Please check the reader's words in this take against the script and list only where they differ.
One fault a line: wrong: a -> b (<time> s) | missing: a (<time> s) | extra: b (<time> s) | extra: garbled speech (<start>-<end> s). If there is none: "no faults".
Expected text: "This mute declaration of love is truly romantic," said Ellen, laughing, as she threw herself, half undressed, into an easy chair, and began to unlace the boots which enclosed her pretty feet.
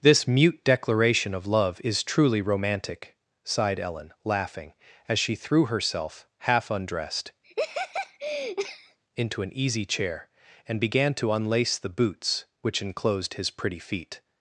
wrong: said -> sighed (3.4 s)
wrong: her -> his (13.3 s)